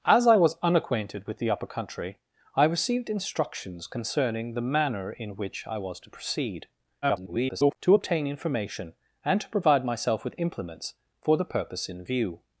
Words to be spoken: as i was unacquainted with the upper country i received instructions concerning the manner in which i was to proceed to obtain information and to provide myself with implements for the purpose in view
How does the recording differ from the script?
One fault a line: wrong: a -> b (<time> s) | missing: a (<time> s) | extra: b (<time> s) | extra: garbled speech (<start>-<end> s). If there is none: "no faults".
extra: garbled speech (7.0-7.8 s)